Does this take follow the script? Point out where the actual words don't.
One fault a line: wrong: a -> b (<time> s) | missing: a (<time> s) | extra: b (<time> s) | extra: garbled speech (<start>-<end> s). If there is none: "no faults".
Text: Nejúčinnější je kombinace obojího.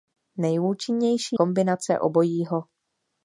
missing: je (1.4 s)